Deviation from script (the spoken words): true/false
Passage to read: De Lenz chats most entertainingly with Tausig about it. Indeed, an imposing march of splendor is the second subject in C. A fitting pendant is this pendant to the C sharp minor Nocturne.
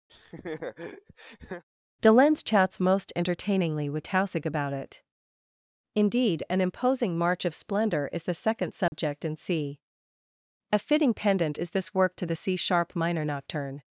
true